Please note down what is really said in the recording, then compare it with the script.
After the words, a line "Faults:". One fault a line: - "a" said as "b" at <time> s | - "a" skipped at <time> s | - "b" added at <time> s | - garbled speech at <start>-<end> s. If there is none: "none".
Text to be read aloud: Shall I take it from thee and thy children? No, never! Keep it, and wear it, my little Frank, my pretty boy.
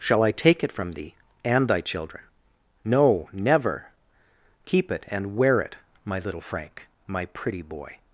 Shall I take it from thee and thy children? No, never! Keep it, and wear it, my little Frank, my pretty boy.
Faults:
none